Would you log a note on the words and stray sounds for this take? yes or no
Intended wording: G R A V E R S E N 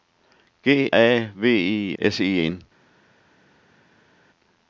yes